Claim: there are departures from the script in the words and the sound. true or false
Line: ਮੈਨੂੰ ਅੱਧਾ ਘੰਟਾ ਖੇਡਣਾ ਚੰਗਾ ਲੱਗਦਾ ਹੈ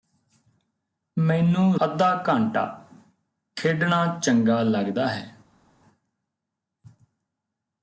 false